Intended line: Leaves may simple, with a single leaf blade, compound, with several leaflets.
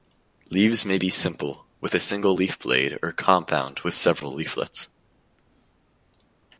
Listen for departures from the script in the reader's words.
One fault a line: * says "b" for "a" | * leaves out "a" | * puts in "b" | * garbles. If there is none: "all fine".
* puts in "be"
* puts in "or"